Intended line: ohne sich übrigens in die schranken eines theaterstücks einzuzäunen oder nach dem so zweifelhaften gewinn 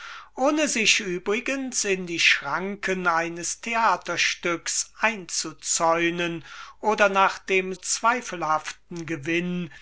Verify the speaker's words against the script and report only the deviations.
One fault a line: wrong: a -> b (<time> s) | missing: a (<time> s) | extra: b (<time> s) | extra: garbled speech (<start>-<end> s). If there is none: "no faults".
missing: so (7.8 s)